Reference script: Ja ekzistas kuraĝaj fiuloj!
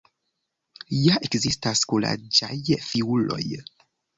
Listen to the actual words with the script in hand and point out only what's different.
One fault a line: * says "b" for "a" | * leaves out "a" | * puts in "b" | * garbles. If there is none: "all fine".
all fine